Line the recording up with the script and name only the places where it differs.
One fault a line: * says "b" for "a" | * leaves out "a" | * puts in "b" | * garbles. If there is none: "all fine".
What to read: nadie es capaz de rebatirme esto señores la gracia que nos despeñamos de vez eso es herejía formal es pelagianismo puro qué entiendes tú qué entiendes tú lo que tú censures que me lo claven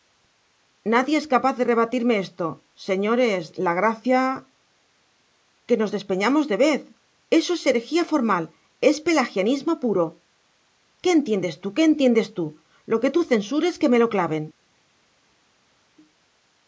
all fine